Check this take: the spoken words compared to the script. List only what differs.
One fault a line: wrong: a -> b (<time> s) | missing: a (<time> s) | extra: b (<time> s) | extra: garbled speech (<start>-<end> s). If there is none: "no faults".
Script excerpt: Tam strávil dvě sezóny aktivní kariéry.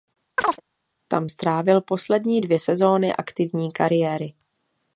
extra: poslední (1.8 s)